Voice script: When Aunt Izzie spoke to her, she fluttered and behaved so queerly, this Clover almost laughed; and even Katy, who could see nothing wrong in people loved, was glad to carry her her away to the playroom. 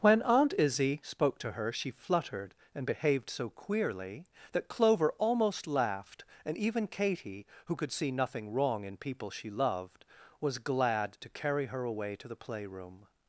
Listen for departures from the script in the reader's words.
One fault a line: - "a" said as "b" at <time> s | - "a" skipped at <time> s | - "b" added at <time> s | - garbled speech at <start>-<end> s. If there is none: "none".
- "this" said as "that" at 4.5 s
- "she" added at 9.3 s
- "her" skipped at 11.8 s